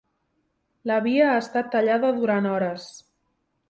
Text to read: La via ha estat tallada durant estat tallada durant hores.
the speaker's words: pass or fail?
fail